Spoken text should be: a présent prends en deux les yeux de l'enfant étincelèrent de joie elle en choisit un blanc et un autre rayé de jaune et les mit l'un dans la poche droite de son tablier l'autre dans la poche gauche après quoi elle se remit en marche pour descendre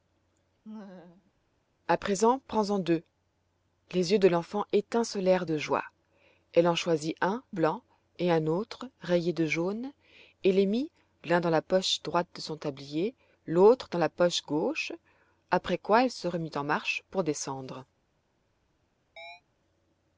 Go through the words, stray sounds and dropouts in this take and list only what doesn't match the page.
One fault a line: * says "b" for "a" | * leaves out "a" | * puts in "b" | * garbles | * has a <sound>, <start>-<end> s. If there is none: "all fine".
* has a laugh, 0.6-1.3 s
* has a chirp, 19.2-19.4 s